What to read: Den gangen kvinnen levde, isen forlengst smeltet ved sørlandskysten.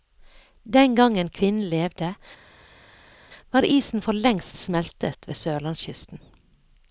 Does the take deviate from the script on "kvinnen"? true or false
false